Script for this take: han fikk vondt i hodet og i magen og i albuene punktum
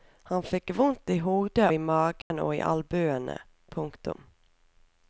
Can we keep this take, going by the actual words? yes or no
no